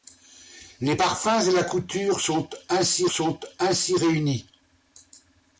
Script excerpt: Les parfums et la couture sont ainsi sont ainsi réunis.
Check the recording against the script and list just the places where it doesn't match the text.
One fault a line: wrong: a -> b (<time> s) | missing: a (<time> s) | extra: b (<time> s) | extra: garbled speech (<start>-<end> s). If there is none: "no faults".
no faults